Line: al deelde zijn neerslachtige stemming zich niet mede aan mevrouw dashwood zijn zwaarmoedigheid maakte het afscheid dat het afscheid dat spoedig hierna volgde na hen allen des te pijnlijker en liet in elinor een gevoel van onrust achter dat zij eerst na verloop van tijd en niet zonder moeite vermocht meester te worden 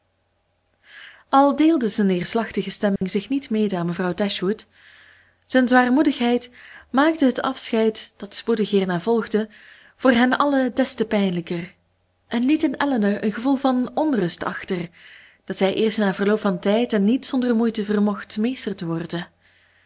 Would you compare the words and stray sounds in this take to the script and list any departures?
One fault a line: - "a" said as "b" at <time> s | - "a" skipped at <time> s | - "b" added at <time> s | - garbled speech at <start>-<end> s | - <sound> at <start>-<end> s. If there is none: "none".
- dropout at 3.0-3.0 s
- "het afscheid dat" skipped at 8.3 s
- "na" said as "voor" at 9.9 s